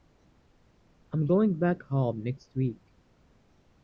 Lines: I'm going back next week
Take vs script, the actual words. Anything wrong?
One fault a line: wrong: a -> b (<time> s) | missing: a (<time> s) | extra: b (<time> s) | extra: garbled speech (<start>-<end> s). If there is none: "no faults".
extra: home (1.8 s)